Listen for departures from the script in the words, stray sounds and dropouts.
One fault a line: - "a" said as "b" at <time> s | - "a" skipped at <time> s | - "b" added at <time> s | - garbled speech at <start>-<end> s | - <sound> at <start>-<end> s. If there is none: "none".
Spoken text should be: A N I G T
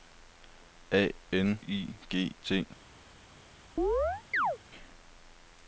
- chirp at 3.8-4.6 s